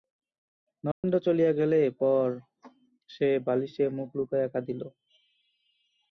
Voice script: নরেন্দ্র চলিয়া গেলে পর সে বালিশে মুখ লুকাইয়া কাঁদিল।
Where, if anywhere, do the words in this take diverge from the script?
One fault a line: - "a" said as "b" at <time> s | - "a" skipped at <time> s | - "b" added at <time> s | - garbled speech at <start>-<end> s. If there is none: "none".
none